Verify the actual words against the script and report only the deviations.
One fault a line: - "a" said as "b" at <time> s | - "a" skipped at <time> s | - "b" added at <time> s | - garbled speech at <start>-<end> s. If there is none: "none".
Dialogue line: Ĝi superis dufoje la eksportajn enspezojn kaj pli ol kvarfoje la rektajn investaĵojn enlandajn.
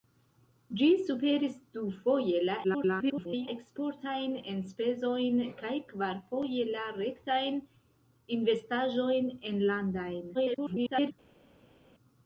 - garbled speech at 2.6-3.5 s
- "pli ol" skipped at 5.7 s
- garbled speech at 10.3-11.1 s